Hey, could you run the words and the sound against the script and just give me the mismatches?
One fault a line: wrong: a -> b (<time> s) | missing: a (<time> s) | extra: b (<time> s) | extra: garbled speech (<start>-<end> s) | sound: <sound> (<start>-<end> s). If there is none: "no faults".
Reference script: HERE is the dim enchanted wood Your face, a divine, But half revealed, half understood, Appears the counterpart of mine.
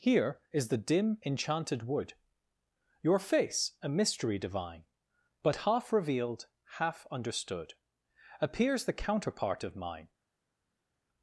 extra: mystery (3.9 s)